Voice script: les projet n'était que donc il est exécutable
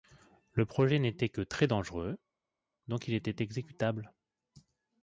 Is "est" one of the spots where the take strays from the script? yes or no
yes